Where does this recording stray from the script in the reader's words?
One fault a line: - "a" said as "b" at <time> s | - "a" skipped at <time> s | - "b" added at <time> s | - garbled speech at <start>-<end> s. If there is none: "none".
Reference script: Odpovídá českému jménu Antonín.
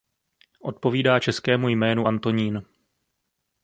none